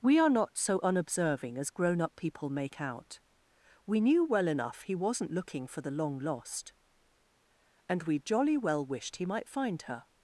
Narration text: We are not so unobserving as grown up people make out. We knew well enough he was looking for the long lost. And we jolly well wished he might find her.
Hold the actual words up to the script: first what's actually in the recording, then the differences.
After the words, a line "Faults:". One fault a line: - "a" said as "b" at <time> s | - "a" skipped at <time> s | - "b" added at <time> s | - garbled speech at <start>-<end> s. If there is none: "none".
We are not so unobserving as grown up people make out. We knew well enough he wasn't looking for the long lost. And we jolly well wished he might find her.
Faults:
- "was" said as "wasn't" at 5.0 s